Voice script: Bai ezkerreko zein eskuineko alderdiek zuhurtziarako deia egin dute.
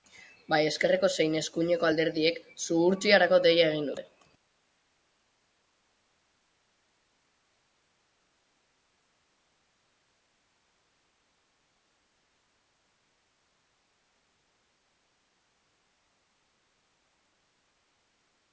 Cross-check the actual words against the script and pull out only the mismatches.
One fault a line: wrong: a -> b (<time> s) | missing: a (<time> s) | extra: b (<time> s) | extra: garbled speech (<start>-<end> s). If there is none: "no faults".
no faults